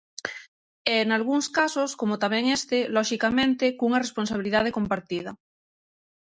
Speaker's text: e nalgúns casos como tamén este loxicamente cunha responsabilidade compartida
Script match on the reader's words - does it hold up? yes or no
yes